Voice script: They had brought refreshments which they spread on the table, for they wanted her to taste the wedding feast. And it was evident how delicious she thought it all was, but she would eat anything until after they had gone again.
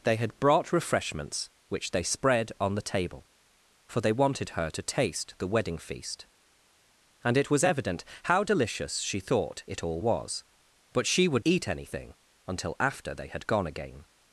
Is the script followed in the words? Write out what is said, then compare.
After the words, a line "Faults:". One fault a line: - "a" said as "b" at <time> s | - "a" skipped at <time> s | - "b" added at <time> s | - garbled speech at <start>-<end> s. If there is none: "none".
They had brought refreshments which they spread on the table, for they wanted her to taste the wedding feast. And it was evident how delicious she thought it all was, but she would eat anything until after they had gone again.
Faults:
none